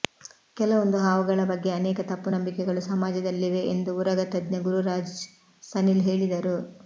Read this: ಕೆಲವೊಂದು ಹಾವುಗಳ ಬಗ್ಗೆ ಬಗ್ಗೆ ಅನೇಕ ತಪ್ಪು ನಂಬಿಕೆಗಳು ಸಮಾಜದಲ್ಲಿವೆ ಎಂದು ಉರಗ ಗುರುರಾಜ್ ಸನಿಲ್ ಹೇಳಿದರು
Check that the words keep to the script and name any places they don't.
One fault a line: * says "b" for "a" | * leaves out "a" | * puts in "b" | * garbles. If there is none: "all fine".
* leaves out "ಬಗ್ಗೆ"
* puts in "ತಜ್ಞ"